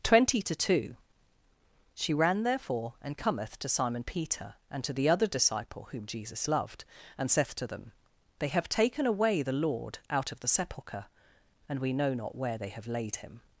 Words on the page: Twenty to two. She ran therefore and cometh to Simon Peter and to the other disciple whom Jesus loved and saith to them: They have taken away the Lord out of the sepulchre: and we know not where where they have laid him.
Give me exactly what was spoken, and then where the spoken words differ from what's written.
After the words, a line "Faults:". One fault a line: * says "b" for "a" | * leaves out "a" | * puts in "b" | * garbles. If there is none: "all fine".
Twenty to two. She ran therefore and cometh to Simon Peter and to the other disciple whom Jesus loved and saith to them: They have taken away the Lord out of the sepulchre: and we know not where they have laid him.
Faults:
* leaves out "where"